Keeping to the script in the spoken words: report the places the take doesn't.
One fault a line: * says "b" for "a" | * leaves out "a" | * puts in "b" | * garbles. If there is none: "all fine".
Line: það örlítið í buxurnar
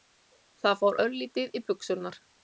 * puts in "fór"